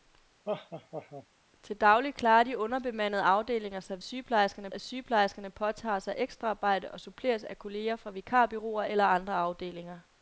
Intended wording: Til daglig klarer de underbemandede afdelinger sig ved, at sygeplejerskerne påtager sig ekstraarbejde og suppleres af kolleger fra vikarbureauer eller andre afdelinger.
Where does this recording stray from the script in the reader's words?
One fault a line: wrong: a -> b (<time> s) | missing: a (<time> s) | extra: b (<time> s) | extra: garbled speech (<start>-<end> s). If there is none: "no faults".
wrong: ved -> sygeplejerskerne (4.0 s)